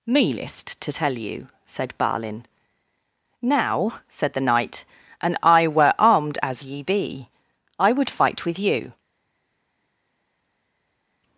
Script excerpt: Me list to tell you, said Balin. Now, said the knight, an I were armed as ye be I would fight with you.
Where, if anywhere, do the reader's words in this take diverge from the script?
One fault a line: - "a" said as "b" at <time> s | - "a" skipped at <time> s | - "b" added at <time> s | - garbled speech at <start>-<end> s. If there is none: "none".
none